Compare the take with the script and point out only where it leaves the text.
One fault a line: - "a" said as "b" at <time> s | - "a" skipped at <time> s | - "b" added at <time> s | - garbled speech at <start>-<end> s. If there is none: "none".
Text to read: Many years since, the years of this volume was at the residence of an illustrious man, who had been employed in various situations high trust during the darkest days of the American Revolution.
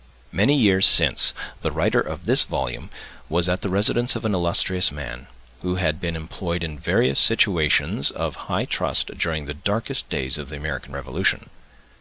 - "years" said as "writer" at 1.7 s
- "of" added at 8.1 s